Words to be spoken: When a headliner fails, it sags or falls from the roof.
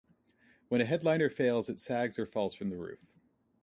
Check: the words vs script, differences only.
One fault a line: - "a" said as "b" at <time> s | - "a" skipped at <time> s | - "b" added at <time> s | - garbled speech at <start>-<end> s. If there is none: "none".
none